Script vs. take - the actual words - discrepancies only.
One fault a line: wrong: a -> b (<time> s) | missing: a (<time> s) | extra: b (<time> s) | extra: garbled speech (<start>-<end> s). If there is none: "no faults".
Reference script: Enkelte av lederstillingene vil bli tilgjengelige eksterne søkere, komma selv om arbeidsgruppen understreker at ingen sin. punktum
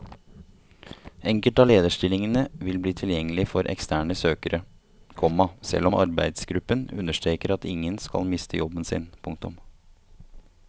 extra: for (3.5 s)
extra: skal miste jobben (8.0 s)